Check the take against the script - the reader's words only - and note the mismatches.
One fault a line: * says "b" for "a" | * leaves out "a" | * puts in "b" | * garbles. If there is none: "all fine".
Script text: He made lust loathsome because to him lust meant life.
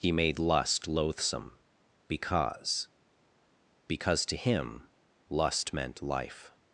* puts in "because"